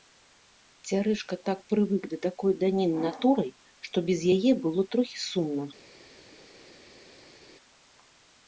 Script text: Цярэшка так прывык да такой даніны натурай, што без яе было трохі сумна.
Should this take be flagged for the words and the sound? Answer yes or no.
no